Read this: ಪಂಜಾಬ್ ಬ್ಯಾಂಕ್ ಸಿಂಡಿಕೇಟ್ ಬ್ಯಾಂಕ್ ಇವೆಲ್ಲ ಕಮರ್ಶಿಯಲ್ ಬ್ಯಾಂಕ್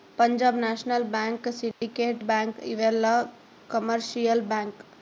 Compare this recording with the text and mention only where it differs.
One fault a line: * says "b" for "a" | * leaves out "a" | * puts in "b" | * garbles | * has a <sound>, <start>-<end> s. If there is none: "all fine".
* puts in "ನ್ಯಾಷನಲ್"
* has a dropout, 1.7-1.8 s